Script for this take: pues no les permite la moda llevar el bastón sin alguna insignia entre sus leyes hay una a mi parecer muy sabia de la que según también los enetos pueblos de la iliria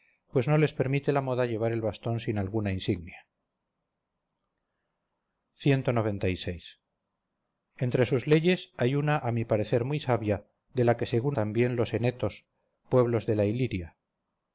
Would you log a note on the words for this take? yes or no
no